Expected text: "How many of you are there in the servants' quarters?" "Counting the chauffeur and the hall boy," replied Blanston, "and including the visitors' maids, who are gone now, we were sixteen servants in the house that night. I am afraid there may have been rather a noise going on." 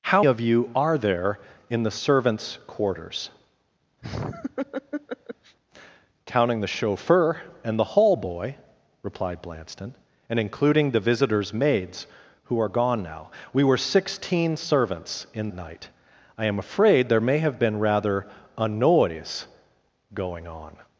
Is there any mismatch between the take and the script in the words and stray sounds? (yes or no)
yes